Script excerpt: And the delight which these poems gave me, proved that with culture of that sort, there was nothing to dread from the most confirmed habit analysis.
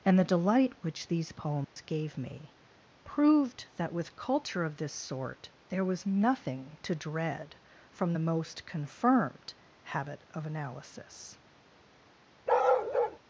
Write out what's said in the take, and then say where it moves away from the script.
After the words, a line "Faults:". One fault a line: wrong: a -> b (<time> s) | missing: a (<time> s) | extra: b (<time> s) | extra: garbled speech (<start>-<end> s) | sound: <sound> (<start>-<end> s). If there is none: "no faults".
And the delight which these poems gave me, proved that with culture of this sort, there was nothing to dread from the most confirmed habit of analysis.
Faults:
sound: dropout (1.6-1.8 s)
wrong: that -> this (4.8 s)
extra: of (10.3 s)
sound: bark (12.5-13.2 s)